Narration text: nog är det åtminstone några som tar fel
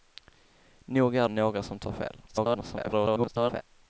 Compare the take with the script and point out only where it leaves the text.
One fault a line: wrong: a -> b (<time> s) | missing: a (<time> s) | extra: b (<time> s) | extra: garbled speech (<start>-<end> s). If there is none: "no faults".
missing: det åtminstone (1.3 s)
extra: garbled speech (2.3-3.6 s)